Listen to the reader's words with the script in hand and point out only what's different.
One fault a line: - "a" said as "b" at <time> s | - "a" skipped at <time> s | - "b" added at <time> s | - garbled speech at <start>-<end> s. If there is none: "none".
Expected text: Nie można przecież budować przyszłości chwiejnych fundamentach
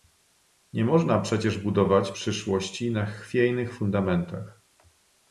- "na" added at 2.9 s